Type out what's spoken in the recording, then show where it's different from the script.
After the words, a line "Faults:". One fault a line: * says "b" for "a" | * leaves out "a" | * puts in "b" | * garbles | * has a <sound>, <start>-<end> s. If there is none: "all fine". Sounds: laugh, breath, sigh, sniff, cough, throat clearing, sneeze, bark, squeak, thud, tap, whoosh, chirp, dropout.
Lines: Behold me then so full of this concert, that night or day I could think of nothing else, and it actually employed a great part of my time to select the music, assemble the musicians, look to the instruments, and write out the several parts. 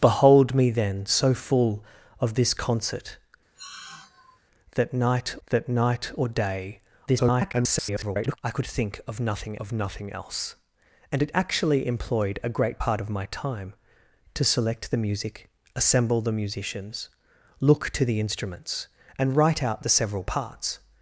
Behold me then so full of this concert, that night that night or day [garbled] I could think of nothing of nothing else, and it actually employed a great part of my time to select the music, assemble the musicians, look to the instruments, and write out the several parts.
Faults:
* has a sigh, 3.5-4.4 s
* puts in "that night"
* garbles
* puts in "of nothing"